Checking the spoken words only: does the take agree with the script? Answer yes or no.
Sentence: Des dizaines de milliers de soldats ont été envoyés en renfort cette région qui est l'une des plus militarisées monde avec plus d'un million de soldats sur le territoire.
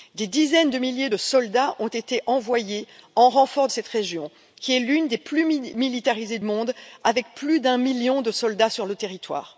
yes